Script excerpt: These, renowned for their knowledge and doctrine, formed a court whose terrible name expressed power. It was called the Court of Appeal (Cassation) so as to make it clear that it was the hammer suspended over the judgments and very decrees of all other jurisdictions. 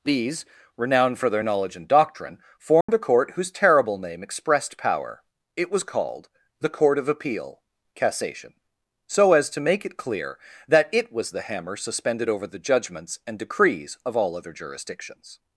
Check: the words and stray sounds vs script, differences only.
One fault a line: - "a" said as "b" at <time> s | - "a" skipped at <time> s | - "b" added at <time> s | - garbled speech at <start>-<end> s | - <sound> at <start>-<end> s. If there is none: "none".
- dropout at 2.8-2.9 s
- "very" skipped at 13.4 s